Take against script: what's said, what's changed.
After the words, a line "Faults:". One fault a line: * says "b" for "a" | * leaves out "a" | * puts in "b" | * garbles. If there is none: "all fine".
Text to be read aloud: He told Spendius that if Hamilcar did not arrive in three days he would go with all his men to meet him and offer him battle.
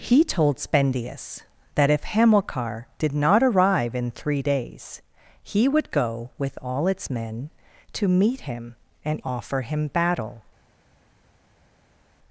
He told Spendius that if Hamilcar did not arrive in three days he would go with all its men to meet him and offer him battle.
Faults:
* says "its" for "his"